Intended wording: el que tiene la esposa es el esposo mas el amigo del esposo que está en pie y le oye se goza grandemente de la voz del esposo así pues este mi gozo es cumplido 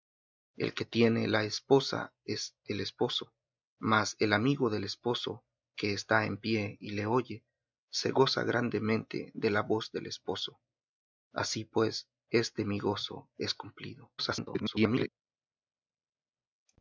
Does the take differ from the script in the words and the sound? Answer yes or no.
yes